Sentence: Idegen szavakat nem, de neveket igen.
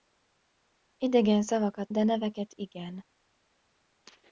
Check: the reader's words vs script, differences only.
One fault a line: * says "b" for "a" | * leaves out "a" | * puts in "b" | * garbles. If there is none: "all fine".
* leaves out "nem"